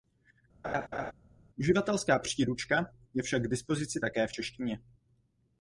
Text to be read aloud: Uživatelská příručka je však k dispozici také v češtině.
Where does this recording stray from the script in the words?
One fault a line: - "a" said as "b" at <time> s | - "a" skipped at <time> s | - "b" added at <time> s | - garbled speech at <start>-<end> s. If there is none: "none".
none